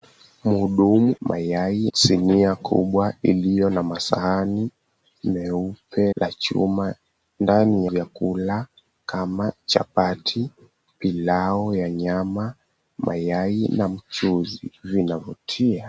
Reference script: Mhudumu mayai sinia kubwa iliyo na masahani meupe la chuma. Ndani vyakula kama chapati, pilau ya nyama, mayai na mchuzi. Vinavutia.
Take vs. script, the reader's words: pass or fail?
pass